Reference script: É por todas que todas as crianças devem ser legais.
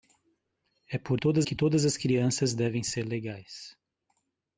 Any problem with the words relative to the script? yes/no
no